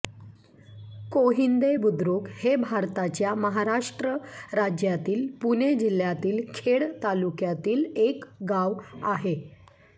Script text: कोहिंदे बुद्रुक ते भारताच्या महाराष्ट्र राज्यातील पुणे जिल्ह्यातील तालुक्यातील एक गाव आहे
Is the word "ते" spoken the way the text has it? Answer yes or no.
no